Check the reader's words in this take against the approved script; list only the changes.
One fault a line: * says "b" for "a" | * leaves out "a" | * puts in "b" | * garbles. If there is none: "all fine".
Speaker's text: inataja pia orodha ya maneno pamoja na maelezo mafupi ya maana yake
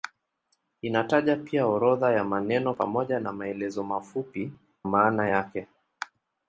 * leaves out "ya"